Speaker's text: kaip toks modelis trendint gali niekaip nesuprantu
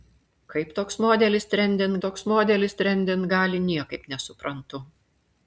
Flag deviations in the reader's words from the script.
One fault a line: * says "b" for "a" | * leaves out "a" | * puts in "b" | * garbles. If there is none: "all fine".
* puts in "toks modelis trendint"